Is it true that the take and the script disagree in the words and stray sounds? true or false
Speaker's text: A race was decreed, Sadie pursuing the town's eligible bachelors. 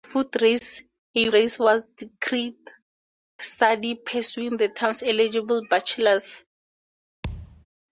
true